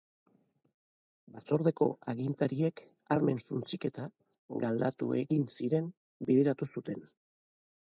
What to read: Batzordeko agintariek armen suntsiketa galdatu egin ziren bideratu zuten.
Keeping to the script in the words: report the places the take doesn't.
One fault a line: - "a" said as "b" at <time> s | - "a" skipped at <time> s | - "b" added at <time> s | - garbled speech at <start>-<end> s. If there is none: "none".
none